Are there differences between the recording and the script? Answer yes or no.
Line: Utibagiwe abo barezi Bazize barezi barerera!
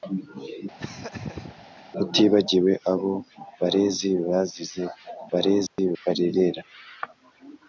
no